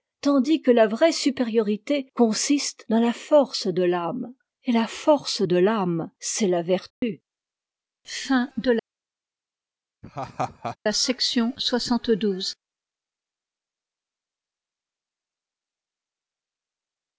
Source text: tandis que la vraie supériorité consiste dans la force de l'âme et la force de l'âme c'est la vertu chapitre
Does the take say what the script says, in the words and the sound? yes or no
no